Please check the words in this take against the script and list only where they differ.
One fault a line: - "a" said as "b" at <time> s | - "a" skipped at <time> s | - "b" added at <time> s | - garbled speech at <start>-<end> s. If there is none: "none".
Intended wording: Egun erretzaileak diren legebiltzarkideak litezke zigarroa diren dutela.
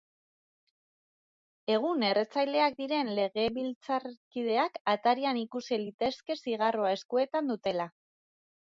- "atarian ikusi" added at 5.0 s
- "diren" said as "eskuetan" at 7.0 s